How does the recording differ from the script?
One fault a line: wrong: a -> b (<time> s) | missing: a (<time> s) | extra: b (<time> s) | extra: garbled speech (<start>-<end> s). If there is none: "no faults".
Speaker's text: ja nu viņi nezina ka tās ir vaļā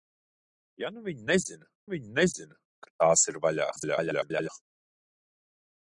extra: viņi nezina (1.9 s)
extra: garbled speech (3.8-4.5 s)